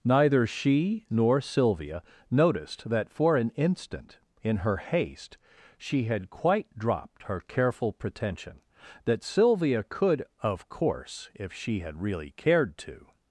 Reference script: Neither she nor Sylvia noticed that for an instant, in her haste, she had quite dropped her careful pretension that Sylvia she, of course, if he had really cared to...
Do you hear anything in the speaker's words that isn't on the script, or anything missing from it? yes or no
yes